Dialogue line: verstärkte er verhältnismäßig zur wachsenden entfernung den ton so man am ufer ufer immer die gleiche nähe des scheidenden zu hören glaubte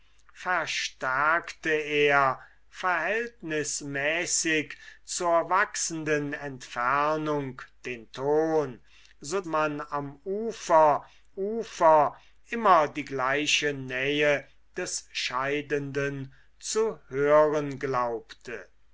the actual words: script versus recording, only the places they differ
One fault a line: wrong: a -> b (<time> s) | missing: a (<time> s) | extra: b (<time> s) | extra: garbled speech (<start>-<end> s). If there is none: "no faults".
no faults